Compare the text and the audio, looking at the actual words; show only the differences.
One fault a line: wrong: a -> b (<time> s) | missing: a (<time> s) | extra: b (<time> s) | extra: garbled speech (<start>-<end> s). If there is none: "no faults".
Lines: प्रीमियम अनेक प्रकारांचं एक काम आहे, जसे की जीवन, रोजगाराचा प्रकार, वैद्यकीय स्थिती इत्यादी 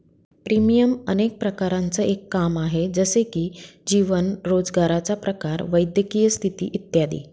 no faults